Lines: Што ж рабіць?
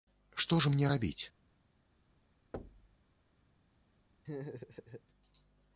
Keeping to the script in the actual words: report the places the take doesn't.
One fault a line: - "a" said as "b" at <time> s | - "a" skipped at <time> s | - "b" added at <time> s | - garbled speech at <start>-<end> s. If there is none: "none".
- "мне" added at 0.8 s